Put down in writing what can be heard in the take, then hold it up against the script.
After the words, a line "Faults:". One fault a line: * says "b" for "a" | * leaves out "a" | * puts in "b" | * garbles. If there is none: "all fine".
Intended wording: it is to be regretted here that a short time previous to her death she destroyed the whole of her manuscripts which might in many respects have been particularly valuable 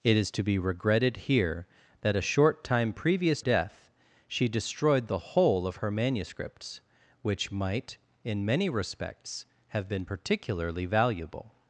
it is to be regretted here that a short time previous death she destroyed the whole of her manuscripts which might in many respects have been particularly valuable
Faults:
* leaves out "to her"